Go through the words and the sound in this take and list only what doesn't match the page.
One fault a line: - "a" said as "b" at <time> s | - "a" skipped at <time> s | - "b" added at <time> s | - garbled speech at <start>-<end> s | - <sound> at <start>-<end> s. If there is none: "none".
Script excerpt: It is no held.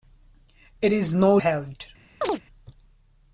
- chirp at 2.2-2.4 s